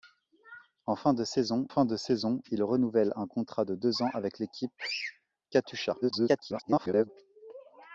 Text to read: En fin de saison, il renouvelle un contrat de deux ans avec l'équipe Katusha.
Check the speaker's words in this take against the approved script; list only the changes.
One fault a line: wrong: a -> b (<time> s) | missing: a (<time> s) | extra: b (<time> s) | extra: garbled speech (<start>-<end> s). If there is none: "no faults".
extra: fin de saison (1.7 s)
extra: garbled speech (6.0-7.1 s)